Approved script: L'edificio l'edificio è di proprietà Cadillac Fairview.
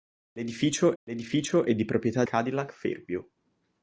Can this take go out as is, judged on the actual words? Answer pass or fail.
pass